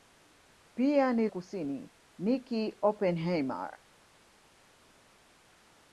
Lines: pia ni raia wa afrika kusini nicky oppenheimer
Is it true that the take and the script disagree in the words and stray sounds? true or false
true